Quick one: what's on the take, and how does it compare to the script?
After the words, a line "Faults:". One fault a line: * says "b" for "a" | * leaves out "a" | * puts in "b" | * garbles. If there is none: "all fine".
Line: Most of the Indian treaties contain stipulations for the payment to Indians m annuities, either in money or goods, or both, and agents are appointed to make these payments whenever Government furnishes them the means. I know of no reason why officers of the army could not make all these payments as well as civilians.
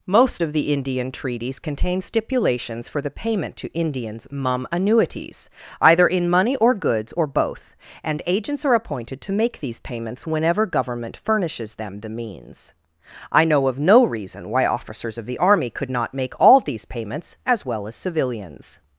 Most of the Indian treaties contain stipulations for the payment to Indians mum annuities, either in money or goods, or both, and agents are appointed to make these payments whenever Government furnishes them the means. I know of no reason why officers of the army could not make all these payments as well as civilians.
Faults:
* says "mum" for "m"